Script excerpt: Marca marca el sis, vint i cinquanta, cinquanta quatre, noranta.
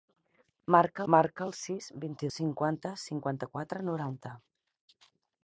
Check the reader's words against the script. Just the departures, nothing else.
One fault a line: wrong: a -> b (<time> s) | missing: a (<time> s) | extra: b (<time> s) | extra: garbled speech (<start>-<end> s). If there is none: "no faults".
no faults